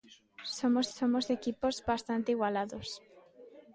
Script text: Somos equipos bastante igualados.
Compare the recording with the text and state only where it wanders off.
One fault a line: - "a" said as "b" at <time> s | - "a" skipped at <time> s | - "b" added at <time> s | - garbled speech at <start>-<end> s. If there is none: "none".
- "somos" added at 1.0 s